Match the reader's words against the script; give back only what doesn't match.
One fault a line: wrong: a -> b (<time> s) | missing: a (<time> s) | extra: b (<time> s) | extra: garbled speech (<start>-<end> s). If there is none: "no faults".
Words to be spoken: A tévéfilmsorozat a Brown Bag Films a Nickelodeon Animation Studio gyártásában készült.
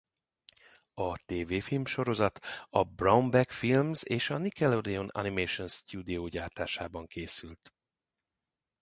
extra: és (4.0 s)